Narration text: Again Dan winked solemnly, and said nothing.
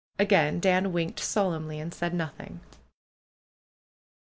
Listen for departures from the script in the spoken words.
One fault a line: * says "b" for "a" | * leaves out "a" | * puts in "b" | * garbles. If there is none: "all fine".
all fine